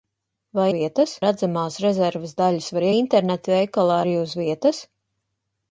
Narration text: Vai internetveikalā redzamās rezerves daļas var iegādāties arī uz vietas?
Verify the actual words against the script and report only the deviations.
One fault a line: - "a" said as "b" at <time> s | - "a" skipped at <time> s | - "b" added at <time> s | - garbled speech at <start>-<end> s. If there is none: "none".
- "internetveikalā" said as "vietas" at 0.8 s
- "iegādāties" said as "internetveikalā" at 3.0 s